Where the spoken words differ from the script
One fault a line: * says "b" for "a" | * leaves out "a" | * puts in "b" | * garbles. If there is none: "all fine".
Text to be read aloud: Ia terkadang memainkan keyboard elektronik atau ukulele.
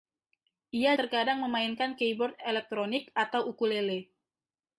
all fine